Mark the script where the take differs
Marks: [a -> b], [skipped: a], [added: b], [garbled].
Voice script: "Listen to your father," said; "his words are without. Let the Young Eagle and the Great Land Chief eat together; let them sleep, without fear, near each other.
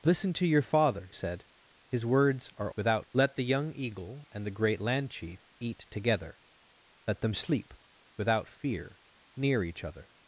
"Listen to your father," said; "his words are without. Let the Young Eagle and the Great Land Chief eat together; let them sleep, without fear, near each other.